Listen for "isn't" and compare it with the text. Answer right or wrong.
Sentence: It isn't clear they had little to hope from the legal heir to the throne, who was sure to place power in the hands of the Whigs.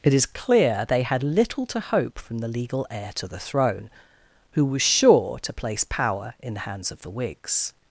wrong